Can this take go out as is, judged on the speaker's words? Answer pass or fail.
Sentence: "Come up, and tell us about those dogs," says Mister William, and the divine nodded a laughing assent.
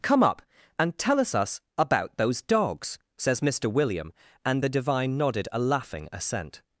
fail